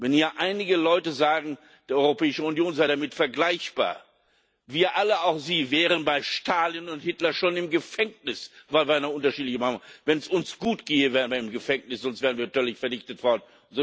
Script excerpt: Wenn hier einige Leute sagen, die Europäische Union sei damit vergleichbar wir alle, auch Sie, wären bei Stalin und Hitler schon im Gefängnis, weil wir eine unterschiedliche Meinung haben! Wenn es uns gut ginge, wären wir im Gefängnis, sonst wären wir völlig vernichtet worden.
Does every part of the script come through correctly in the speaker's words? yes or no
yes